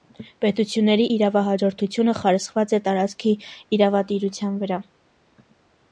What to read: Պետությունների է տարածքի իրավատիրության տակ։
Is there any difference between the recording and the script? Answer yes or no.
yes